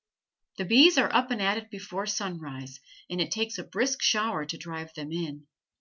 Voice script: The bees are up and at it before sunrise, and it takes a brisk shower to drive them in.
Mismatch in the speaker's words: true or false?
false